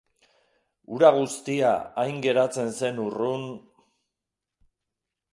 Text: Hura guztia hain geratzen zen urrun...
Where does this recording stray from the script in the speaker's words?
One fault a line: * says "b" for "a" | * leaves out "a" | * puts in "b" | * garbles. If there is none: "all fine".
all fine